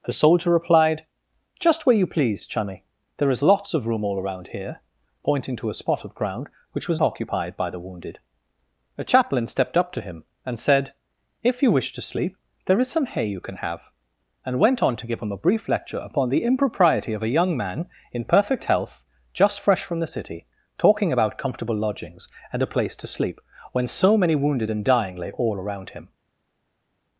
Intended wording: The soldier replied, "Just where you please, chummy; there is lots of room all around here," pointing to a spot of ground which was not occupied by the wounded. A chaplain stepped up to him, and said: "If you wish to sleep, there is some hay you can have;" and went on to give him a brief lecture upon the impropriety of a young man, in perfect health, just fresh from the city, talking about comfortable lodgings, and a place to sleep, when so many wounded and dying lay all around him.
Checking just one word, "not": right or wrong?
wrong